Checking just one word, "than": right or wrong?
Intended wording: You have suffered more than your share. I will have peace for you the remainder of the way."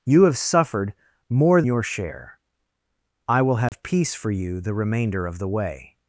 wrong